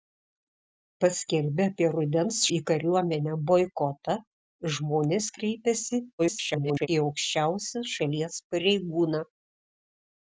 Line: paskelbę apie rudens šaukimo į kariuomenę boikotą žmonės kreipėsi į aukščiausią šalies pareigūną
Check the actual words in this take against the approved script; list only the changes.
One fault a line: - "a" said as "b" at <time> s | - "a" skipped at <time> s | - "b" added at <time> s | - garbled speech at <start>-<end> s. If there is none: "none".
- "šaukimo" skipped at 2.4 s
- garbled speech at 6.2-6.9 s